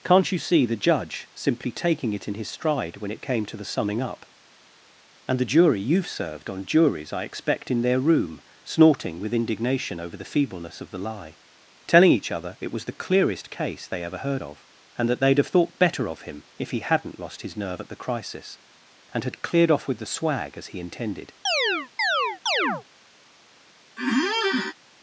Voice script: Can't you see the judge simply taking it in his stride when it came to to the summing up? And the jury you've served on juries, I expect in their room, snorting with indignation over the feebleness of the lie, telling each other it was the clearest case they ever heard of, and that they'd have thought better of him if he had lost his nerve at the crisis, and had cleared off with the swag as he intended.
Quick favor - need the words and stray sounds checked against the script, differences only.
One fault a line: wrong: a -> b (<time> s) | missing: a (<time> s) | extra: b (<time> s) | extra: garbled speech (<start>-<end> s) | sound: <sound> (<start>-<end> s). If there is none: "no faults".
missing: to (3.6 s)
wrong: had -> hadn't (16.8 s)
sound: chirp (21.5-22.8 s)
sound: squeak (24.0-24.7 s)